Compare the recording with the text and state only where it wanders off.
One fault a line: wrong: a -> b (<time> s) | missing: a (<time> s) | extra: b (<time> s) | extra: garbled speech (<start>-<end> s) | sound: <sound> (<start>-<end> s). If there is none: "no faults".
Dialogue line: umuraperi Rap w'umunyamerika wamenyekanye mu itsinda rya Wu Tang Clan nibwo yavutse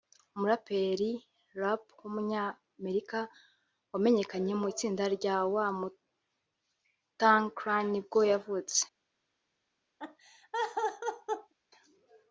sound: laugh (10.0-11.5 s)